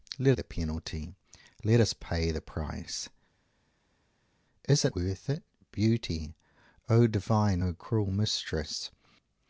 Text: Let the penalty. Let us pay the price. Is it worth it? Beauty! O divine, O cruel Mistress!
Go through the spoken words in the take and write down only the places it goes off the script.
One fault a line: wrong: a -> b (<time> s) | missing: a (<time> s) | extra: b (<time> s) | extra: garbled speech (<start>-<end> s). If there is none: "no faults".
no faults